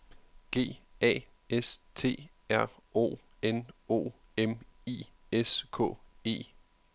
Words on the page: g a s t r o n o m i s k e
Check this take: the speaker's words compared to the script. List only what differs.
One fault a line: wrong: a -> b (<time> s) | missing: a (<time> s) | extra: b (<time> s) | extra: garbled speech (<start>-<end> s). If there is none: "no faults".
no faults